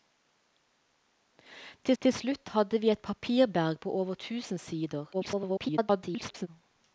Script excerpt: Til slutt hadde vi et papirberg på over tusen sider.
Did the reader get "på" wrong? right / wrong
right